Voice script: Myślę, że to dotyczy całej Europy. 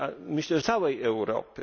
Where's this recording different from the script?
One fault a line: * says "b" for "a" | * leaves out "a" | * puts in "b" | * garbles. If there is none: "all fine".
* leaves out "że to dotyczy"